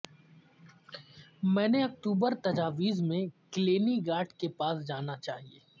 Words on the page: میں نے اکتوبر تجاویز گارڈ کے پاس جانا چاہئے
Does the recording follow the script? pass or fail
fail